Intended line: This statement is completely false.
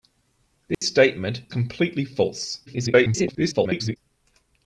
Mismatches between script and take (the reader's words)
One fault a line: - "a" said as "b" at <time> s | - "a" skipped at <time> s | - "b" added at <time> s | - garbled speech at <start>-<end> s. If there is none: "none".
- "is" skipped at 1.4 s
- garbled speech at 2.7-4.0 s